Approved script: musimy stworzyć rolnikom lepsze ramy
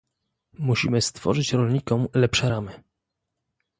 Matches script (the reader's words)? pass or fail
pass